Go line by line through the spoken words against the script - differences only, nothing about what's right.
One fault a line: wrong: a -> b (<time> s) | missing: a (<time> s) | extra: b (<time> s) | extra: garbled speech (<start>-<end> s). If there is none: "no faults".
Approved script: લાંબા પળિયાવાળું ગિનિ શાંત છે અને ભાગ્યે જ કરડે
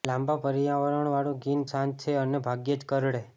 no faults